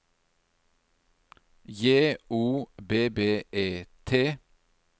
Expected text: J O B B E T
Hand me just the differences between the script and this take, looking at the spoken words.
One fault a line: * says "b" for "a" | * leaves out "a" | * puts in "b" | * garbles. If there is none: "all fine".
all fine